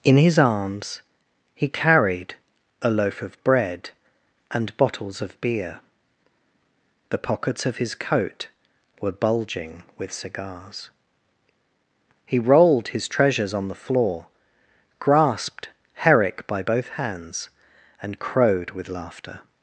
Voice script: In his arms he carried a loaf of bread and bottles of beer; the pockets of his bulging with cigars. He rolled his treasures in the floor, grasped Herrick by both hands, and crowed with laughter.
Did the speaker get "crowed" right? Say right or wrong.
right